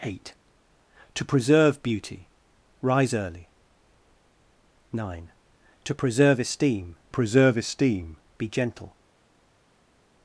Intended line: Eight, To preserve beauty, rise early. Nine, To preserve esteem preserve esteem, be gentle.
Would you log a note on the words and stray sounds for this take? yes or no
no